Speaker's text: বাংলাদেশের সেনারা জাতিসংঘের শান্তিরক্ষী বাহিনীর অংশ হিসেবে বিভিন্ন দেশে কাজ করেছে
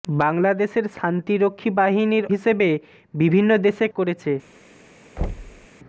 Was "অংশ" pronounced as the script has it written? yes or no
no